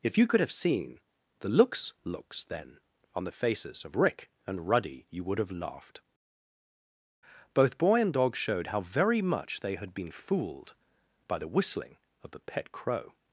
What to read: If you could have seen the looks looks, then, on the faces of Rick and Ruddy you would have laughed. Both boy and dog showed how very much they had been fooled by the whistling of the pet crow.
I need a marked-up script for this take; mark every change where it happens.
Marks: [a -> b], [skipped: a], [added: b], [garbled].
If you could have seen the looks looks, then, on the faces of Rick and Ruddy you would have laughed. Both boy and dog showed how very much they had been fooled by the whistling of the pet crow.